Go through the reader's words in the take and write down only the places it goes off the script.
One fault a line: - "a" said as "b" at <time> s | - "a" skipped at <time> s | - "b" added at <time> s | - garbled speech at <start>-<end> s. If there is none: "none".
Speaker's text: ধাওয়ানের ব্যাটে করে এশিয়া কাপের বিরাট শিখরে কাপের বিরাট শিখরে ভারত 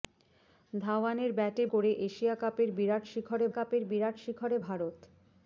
none